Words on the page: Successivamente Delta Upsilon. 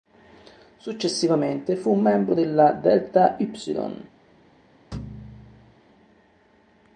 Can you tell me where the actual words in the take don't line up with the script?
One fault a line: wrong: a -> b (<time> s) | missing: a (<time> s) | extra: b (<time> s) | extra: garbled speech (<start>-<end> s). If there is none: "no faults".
extra: fu membro della (1.8 s)